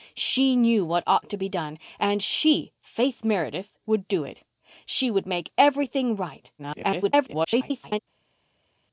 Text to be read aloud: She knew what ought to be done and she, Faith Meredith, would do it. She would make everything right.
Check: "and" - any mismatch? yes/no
no